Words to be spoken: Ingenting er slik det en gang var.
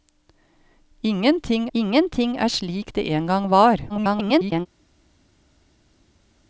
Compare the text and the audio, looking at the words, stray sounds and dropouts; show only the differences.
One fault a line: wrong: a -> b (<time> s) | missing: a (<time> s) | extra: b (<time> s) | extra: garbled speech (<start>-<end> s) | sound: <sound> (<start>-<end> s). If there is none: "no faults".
extra: ingenting (1.7 s)
extra: garbled speech (3.9-4.7 s)